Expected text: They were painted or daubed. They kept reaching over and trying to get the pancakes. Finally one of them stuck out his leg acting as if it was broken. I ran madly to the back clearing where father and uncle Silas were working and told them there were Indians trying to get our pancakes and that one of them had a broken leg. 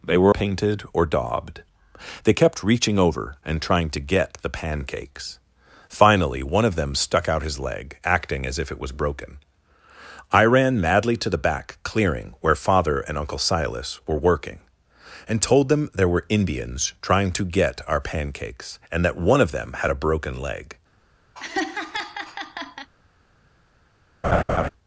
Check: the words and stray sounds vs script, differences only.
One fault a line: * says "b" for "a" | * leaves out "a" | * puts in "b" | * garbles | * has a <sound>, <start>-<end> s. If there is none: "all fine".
* has a laugh, 21.3-22.9 s
* has a laugh, 24.2-24.7 s